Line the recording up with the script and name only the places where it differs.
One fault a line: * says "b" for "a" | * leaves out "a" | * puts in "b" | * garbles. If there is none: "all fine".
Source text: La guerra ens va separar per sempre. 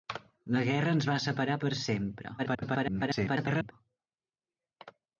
* garbles